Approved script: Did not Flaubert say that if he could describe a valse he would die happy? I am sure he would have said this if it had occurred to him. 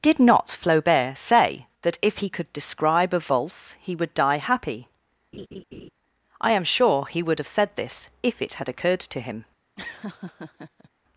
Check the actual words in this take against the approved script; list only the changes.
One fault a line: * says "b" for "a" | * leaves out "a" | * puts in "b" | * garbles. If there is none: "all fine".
all fine